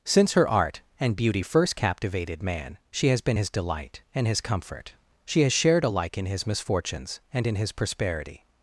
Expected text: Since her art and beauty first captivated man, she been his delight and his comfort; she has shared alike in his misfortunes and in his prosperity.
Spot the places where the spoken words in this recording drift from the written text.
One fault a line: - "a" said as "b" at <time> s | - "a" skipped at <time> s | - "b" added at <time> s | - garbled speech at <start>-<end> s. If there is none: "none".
- "has" added at 3.1 s